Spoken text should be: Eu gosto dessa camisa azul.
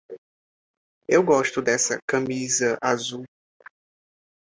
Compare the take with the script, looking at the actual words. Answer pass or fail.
pass